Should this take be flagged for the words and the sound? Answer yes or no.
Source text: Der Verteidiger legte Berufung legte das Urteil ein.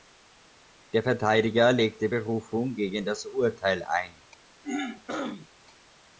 yes